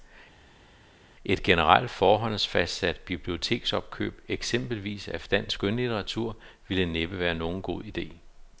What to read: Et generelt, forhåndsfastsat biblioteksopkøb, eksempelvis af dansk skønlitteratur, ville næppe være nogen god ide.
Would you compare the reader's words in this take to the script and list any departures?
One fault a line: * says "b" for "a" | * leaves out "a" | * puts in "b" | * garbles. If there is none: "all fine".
all fine